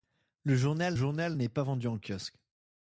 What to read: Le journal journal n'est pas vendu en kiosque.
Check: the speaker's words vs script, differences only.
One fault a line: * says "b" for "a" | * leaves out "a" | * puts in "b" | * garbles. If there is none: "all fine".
all fine